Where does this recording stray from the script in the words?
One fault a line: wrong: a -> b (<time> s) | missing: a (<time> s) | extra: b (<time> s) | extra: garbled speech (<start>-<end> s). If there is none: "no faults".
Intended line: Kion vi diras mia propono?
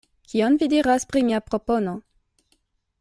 extra: pri (1.1 s)